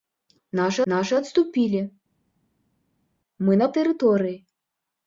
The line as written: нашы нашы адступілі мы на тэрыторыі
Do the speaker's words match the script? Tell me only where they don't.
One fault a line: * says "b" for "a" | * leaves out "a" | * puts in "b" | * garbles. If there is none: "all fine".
all fine